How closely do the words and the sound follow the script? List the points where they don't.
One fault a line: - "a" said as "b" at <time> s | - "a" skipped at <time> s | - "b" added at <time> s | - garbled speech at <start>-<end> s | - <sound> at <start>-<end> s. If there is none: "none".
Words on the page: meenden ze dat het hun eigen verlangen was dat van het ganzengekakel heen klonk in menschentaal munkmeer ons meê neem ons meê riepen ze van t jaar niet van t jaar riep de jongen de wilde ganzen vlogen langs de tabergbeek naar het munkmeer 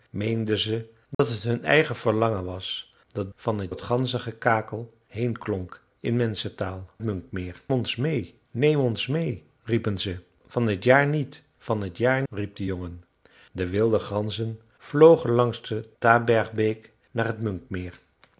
- dropout at 1.1-1.2 s